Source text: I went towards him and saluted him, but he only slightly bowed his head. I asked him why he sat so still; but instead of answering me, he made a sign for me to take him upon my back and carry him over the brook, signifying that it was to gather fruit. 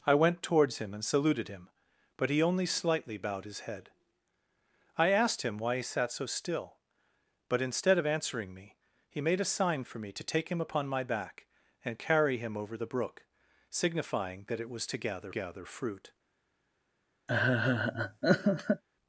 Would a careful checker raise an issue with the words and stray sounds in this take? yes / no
yes